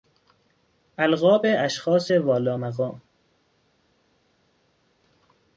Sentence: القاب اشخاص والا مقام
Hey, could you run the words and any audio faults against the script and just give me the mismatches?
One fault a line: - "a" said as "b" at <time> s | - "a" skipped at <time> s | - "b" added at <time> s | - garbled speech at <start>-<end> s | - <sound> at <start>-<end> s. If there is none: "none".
none